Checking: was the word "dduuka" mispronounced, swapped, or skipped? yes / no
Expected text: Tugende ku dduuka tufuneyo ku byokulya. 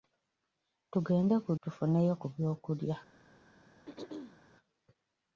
yes